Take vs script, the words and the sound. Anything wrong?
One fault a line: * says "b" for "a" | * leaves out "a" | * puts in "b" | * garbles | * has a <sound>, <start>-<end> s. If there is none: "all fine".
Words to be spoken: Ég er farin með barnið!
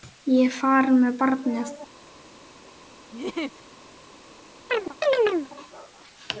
* has a laugh, 3.1-3.6 s
* has a chirp, 4.7-5.5 s